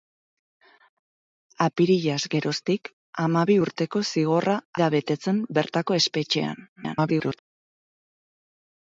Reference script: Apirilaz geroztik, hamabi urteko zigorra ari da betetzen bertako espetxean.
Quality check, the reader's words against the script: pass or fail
fail